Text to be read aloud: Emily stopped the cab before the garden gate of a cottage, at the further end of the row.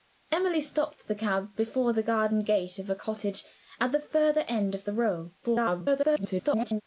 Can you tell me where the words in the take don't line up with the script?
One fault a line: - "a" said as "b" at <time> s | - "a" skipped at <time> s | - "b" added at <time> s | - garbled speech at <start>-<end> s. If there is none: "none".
- garbled speech at 5.4-6.8 s